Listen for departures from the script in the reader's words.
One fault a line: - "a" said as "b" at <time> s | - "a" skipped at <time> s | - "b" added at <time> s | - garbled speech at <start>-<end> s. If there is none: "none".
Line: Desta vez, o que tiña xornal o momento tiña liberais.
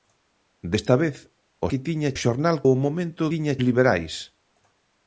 none